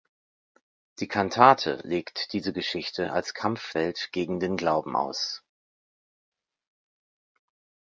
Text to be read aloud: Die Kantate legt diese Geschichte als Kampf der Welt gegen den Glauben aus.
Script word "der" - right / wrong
wrong